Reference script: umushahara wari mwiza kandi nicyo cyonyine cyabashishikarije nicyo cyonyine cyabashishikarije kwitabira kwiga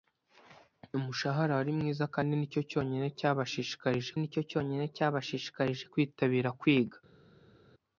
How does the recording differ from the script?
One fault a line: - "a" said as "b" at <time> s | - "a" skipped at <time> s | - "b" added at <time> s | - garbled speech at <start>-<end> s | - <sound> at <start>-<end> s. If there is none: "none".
none